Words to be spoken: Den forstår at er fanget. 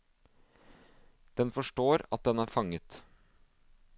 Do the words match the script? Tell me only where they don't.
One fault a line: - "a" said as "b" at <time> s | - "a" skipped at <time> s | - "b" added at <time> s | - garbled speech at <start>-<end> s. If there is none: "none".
- "den" added at 2.2 s